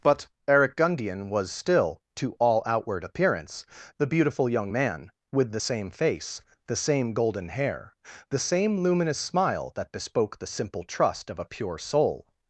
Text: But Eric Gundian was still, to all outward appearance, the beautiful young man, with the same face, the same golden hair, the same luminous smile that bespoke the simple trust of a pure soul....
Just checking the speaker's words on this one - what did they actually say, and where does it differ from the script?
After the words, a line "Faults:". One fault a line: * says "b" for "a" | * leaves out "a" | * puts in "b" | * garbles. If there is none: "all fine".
But Eric Gundian was still, to all outward appearance, the beautiful young man, with the same face, the same golden hair, the same luminous smile that bespoke the simple trust of a pure soul....
Faults:
all fine